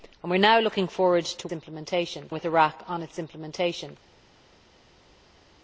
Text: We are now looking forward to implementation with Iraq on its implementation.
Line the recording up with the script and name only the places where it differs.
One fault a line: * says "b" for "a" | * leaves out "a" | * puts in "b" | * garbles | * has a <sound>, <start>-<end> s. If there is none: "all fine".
all fine